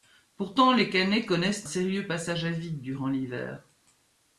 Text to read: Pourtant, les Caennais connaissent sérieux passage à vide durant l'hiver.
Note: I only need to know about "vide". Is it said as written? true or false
true